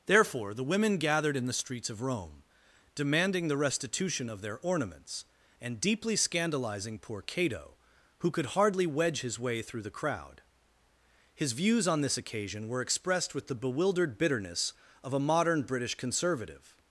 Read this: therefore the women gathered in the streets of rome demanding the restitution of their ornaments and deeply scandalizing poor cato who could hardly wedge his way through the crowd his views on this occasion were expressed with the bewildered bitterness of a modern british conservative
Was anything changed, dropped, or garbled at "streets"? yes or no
no